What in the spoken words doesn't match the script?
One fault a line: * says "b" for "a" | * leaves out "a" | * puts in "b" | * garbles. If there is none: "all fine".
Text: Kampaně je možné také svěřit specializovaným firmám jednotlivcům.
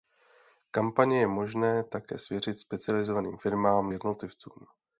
all fine